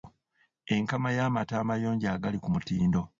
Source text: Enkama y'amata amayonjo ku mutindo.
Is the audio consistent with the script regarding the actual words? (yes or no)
no